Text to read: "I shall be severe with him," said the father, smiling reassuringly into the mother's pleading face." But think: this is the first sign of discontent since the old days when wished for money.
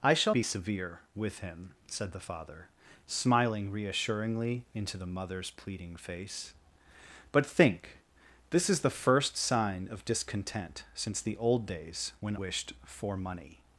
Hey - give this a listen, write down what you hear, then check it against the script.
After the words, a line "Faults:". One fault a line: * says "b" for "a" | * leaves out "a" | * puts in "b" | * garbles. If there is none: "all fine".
"I shall be severe with him," said the father, smiling reassuringly into the mother's pleading face." But think: this is the first sign of discontent since the old days when wished for money.
Faults:
all fine